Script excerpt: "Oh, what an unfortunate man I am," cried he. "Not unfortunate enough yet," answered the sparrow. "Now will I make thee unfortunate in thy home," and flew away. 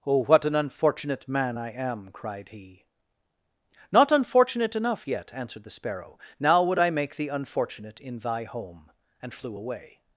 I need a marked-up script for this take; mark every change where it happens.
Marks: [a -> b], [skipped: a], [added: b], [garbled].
"Oh, what an unfortunate man I am," cried he. "Not unfortunate enough yet," answered the sparrow. "Now [will -> would] I make thee unfortunate in thy home," and flew away.